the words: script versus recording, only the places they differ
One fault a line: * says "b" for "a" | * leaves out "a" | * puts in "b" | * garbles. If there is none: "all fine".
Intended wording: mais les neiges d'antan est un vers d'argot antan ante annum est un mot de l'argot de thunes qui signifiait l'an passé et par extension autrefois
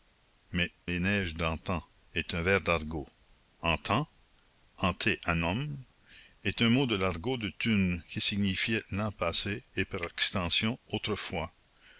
all fine